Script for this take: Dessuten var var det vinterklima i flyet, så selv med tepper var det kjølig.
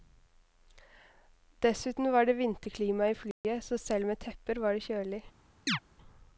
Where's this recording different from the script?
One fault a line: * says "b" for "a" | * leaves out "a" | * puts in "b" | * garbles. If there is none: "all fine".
* leaves out "var"